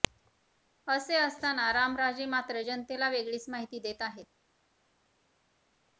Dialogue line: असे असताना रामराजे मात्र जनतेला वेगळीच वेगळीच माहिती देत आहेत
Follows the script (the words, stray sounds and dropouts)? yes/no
no